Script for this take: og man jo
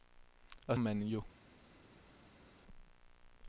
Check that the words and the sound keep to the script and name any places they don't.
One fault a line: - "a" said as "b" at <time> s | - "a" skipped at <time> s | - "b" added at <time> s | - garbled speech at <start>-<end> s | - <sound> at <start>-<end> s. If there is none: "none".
none